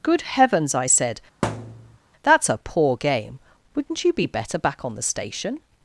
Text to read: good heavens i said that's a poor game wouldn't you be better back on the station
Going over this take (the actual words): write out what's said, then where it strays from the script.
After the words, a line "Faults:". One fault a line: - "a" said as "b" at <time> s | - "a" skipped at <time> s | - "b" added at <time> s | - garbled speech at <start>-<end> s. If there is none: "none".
good heavens i said that's a poor game wouldn't you be better back on the station
Faults:
none